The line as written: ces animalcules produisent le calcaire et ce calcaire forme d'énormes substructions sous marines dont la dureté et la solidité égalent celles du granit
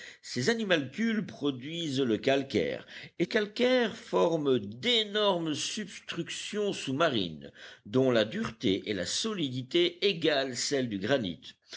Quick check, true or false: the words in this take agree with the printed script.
false